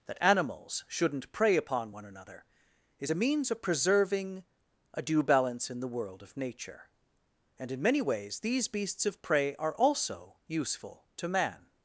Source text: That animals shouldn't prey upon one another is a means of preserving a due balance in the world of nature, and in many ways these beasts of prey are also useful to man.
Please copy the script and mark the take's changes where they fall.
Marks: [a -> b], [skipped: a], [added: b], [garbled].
That animals shouldn't prey upon one another is a means of preserving a due balance in the world of nature, and in many ways these beasts of prey are also useful to man.